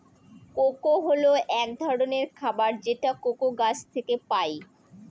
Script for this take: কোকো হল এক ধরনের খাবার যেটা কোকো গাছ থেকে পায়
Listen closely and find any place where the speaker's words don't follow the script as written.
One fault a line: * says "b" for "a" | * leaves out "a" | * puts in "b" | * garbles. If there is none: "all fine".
all fine